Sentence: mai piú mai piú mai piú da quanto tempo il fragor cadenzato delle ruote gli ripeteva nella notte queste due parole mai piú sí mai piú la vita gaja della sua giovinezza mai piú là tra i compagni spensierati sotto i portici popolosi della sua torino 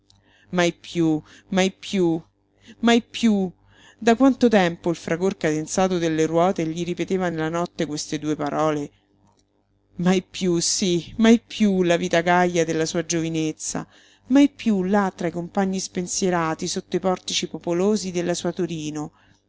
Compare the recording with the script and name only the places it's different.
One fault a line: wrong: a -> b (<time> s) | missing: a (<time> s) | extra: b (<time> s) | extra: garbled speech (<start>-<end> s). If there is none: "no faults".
no faults